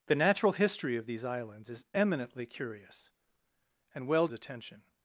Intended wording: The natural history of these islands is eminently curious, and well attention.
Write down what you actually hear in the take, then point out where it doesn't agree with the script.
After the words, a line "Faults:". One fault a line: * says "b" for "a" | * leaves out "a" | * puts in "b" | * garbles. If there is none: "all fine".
The natural history of these islands is eminently curious, and well attention.
Faults:
all fine